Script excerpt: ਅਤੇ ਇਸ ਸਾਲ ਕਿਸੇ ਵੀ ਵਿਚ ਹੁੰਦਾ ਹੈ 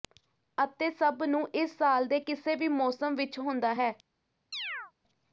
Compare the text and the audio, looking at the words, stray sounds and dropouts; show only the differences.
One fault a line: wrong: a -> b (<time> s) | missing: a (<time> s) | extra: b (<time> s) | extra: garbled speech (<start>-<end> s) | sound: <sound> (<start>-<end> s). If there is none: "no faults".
extra: ਸਭ ਨੂੰ (0.9 s)
extra: ਦੇ (2.1 s)
extra: ਮੌਸਮ (2.7 s)
sound: chirp (4.5-4.9 s)